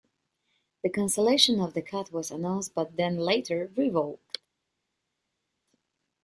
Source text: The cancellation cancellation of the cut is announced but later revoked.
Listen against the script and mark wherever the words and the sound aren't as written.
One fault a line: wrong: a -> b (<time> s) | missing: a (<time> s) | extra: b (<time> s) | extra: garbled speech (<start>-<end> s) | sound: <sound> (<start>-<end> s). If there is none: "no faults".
missing: cancellation (1.6 s)
wrong: is -> was (2.1 s)
extra: then (3.0 s)